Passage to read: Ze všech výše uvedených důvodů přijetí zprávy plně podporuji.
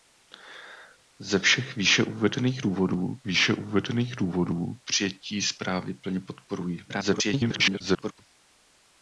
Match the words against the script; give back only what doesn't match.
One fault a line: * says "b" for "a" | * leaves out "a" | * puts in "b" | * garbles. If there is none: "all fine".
* puts in "výše uvedených důvodů"
* garbles